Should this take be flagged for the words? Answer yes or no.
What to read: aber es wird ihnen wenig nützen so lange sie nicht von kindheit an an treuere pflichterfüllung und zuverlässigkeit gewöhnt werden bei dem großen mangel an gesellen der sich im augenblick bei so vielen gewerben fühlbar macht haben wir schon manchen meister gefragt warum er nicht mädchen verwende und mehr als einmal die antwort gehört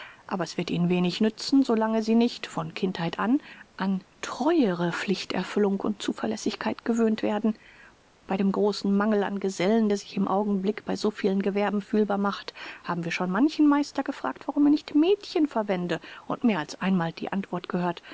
no